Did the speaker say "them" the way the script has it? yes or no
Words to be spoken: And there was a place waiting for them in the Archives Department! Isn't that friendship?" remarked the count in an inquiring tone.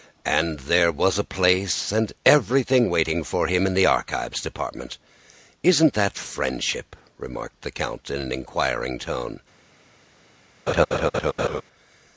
no